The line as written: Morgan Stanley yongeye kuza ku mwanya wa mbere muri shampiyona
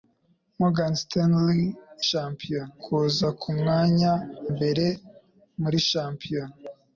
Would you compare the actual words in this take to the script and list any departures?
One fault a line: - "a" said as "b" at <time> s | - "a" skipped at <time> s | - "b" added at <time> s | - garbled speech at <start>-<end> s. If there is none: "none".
- "yongeye" said as "shampiyona" at 2.1 s
- "wa" skipped at 4.1 s